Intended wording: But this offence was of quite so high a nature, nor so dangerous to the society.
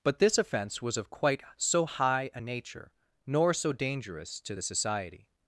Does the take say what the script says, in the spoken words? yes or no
yes